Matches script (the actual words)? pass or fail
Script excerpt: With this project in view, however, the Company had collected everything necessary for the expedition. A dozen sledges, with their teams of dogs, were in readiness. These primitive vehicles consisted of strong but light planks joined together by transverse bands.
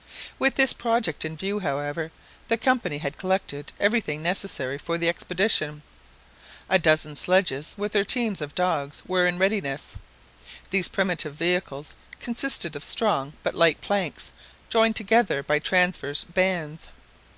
pass